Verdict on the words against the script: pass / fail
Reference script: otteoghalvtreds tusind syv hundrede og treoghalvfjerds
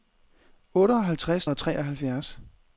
fail